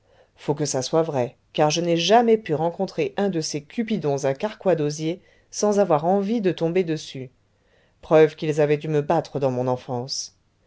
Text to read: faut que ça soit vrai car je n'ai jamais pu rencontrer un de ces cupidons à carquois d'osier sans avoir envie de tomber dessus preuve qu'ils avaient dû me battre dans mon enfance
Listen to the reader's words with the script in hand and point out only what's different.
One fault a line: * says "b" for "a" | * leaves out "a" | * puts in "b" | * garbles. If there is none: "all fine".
all fine